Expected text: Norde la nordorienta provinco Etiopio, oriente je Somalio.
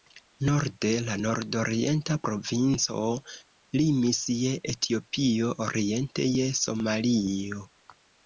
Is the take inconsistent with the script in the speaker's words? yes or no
yes